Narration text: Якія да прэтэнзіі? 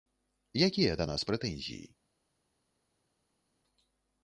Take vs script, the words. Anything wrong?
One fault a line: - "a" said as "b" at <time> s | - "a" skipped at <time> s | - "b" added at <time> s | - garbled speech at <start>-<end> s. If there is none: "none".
- "нас" added at 1.1 s